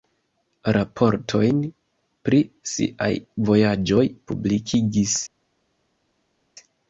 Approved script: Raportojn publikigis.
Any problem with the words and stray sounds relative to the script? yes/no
yes